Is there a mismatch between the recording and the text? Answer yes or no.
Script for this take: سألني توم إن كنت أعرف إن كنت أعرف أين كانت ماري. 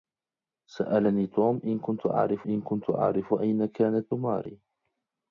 no